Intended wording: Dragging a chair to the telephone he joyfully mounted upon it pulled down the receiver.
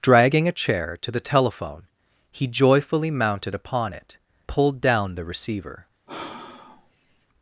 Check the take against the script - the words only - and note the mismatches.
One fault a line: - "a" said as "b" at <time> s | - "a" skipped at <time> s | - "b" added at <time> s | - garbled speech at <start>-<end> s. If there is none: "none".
none